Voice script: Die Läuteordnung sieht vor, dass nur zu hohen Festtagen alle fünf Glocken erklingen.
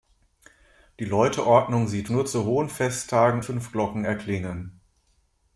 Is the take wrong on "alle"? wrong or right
wrong